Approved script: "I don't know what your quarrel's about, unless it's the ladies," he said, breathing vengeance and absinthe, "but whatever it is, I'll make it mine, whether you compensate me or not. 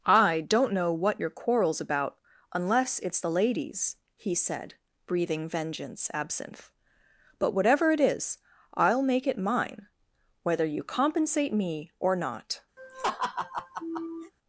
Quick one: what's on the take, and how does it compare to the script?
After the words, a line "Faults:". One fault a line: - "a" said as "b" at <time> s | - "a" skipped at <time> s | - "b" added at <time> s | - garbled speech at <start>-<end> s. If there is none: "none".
"I don't know what your quarrel's about, unless it's the ladies," he said, breathing vengeance absinthe, "but whatever it is, I'll make it mine, whether you compensate me or not.
Faults:
- "and" skipped at 6.1 s